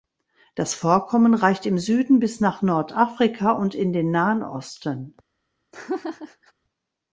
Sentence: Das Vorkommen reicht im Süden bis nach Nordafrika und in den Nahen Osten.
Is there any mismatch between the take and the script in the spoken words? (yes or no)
no